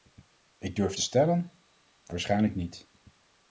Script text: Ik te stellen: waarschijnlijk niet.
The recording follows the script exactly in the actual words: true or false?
false